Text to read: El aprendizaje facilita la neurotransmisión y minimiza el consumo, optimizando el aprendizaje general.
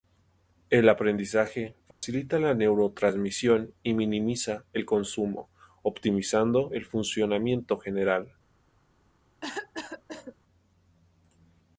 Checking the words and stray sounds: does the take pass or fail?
fail